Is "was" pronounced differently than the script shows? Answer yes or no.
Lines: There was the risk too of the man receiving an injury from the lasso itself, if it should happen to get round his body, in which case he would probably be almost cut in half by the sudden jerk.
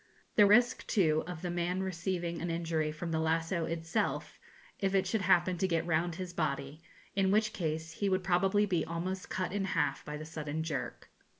yes